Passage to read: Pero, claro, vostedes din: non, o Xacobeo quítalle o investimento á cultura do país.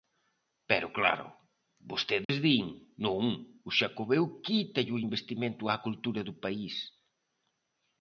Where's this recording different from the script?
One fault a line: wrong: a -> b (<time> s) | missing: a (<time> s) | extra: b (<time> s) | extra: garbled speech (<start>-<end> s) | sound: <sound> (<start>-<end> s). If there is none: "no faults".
sound: dropout (2.2-2.3 s)